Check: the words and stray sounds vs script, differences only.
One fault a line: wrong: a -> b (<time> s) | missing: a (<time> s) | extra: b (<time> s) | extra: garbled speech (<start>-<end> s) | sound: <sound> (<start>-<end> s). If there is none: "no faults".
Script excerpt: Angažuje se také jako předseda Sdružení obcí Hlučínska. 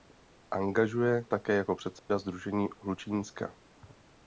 missing: se (1.2 s)
sound: dropout (2.0-2.1 s)
missing: obcí (2.7 s)